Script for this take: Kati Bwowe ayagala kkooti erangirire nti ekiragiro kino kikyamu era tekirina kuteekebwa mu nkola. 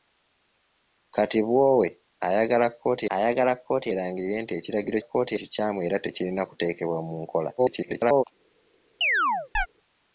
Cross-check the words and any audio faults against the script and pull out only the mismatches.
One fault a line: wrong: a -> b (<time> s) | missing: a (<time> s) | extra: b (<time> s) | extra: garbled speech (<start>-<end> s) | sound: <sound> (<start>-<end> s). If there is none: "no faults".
extra: ayagala kkooti (3.2 s)
wrong: kino -> kkooti (5.0 s)
extra: garbled speech (7.6-8.2 s)
sound: chirp (9.0-9.7 s)